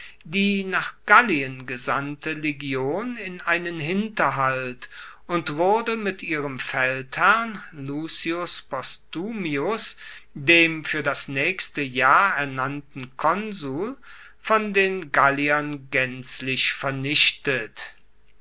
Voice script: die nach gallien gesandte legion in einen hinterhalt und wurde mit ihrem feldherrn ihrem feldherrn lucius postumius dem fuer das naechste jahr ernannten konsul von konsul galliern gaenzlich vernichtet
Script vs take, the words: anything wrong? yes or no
yes